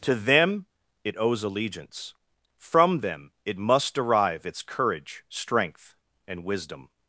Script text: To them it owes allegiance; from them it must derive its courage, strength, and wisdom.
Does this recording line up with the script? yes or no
yes